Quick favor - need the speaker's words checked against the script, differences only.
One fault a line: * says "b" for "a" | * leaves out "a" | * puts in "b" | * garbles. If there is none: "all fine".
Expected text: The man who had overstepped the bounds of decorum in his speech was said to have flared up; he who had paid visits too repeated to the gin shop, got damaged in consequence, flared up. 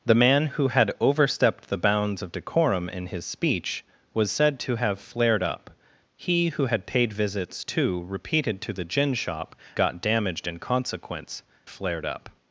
all fine